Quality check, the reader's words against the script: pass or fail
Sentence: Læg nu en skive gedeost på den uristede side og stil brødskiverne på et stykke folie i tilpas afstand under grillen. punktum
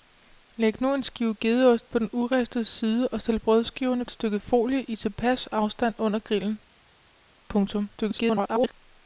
fail